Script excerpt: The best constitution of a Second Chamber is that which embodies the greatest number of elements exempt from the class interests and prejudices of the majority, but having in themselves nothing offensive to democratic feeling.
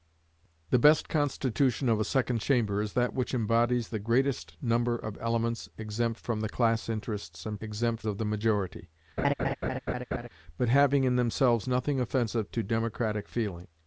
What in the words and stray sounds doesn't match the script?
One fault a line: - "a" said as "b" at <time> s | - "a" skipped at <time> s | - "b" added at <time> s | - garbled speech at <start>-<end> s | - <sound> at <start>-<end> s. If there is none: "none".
- "prejudices" said as "exempt" at 7.6 s
- laugh at 9.2-10.3 s